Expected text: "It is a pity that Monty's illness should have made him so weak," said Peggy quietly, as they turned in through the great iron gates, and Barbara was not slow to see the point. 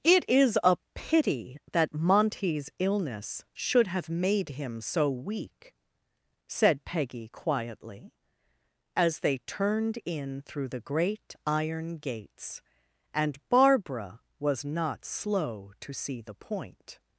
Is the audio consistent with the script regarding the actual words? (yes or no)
yes